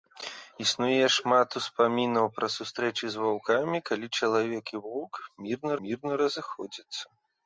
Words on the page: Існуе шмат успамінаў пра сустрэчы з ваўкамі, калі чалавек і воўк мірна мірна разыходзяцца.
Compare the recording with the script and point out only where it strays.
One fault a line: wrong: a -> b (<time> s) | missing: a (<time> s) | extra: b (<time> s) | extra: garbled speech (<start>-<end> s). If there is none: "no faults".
no faults